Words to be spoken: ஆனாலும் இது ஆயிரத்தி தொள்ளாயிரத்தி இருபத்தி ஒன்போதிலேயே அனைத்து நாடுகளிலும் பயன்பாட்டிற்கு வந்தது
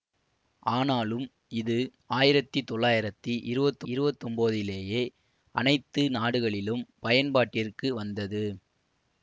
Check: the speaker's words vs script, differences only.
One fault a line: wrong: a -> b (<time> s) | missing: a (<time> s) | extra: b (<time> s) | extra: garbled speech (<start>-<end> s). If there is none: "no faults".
extra: இருபத்தி (3.9 s)